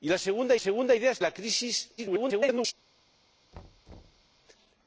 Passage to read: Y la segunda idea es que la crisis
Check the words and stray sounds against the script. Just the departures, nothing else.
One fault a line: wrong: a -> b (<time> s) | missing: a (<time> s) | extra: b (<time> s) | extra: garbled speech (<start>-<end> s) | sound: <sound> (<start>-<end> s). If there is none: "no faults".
extra: segunda (0.6 s)
missing: que (1.2 s)
extra: garbled speech (2.0-2.7 s)
sound: thud (3.5-4.3 s)